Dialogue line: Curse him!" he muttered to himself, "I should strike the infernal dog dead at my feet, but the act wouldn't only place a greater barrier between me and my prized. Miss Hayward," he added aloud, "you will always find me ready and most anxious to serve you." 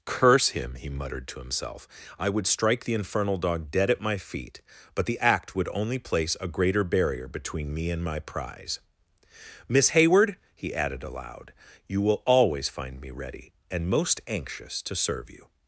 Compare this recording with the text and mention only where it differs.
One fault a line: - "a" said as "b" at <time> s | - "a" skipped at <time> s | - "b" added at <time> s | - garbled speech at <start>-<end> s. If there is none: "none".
- "should" said as "would" at 2.3 s
- "wouldn't" said as "would" at 5.5 s
- "prized" said as "prize" at 8.2 s